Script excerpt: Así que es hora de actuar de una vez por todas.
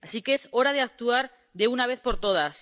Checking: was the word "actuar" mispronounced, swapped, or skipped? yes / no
no